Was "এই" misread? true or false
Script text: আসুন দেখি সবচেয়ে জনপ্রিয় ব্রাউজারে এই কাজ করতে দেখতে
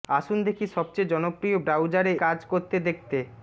true